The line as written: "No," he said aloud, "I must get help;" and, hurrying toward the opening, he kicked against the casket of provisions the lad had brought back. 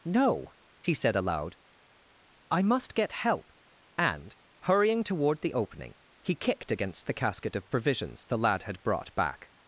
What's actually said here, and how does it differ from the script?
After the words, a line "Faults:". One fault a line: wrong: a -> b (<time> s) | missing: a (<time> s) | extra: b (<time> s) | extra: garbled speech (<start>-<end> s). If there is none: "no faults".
"No," he said aloud, "I must get help;" and, hurrying toward the opening, he kicked against the casket of provisions the lad had brought back.
Faults:
no faults